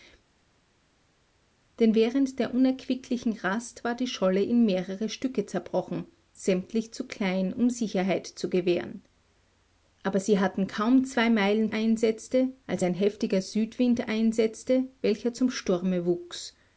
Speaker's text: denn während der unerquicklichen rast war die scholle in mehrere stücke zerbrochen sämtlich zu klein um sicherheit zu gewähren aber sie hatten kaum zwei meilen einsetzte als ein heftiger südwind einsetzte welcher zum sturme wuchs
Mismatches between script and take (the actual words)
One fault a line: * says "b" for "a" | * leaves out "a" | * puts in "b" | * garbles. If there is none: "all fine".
all fine